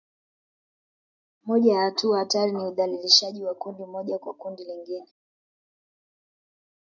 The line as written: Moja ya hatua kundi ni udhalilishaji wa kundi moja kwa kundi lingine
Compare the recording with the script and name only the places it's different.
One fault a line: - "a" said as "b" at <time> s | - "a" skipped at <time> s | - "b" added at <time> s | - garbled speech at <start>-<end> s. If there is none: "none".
- "kundi" said as "hatari" at 2.2 s